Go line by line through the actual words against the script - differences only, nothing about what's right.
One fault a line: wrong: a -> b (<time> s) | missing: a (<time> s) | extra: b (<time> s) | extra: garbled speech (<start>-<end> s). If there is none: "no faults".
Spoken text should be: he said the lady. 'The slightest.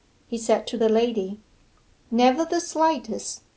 extra: to (0.7 s)
extra: Never (2.1 s)